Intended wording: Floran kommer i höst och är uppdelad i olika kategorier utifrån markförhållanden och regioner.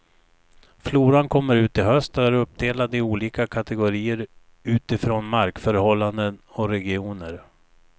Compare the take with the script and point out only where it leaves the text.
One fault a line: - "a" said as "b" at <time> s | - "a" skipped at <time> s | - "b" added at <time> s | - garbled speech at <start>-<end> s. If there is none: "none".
- "ut" added at 1.6 s